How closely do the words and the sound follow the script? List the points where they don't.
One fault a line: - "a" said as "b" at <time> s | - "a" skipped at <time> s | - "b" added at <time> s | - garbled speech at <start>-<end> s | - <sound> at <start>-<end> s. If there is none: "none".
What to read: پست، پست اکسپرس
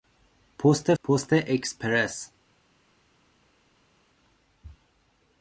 none